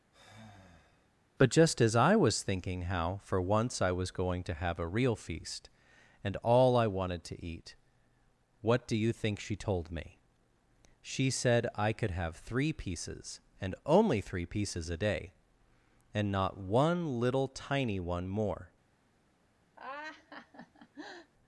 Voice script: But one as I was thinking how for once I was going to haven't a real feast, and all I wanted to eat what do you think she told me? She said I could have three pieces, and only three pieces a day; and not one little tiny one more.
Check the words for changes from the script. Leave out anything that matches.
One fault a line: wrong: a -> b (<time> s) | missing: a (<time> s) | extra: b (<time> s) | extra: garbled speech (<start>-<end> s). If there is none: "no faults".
wrong: one -> just (1.5 s)
wrong: haven't -> have (4.5 s)